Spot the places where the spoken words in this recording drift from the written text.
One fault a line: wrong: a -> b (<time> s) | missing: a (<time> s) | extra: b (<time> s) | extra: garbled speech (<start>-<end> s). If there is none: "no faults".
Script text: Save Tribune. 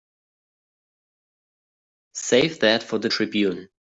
extra: that for the (2.6 s)